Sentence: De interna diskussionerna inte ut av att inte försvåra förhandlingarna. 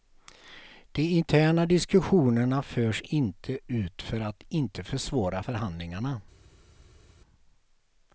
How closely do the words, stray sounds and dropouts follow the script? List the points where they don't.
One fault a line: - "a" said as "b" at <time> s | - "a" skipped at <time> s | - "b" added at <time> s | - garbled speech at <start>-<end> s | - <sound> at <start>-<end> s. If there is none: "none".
- "förs" added at 2.6 s
- "av" said as "för" at 4.0 s